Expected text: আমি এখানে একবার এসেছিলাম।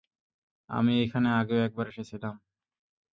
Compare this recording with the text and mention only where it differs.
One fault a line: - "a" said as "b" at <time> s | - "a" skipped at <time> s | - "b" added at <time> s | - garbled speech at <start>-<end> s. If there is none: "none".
- "আগেও" added at 1.4 s